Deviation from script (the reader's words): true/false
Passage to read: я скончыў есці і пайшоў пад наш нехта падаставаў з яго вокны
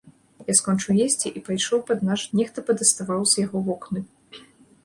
false